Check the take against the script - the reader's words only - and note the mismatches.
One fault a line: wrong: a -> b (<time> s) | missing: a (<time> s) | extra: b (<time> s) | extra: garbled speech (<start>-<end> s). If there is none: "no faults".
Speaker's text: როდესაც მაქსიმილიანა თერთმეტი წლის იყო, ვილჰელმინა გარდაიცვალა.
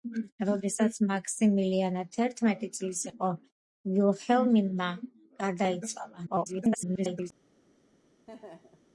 extra: garbled speech (6.3-7.3 s)